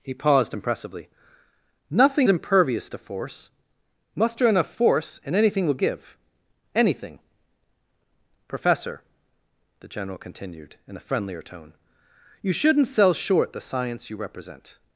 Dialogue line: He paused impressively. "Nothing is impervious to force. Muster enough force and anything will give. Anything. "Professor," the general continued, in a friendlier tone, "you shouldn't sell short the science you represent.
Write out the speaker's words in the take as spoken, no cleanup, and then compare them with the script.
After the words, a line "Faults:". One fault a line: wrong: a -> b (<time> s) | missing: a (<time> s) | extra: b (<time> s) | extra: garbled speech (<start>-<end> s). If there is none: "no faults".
He paused impressively. "Nothing impervious to force. Muster enough force and anything will give. Anything. "Professor," the general continued, in a friendlier tone, "you shouldn't sell short the science you represent.
Faults:
missing: is (2.3 s)